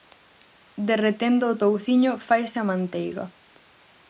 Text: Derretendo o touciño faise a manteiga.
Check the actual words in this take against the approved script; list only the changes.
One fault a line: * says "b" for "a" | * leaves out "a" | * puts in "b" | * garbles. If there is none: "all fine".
all fine